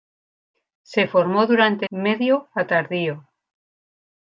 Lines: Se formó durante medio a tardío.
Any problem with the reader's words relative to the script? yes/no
no